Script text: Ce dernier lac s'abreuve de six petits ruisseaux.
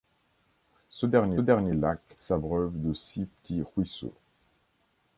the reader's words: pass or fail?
fail